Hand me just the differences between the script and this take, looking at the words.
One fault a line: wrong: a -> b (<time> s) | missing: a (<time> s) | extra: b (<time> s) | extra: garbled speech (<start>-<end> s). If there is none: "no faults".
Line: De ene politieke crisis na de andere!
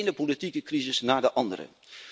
no faults